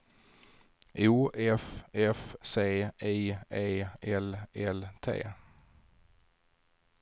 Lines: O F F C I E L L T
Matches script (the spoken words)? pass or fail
pass